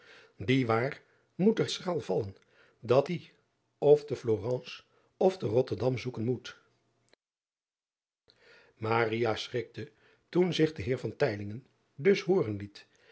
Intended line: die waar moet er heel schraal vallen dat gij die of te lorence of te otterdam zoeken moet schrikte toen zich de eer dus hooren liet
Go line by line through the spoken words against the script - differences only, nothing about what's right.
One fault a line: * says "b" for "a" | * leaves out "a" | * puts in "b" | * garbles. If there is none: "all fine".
* leaves out "heel"
* leaves out "gij"